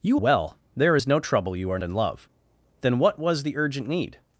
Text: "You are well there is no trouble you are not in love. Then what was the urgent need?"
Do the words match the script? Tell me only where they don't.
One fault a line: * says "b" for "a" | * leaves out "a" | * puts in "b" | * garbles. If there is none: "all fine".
* leaves out "are"
* leaves out "not"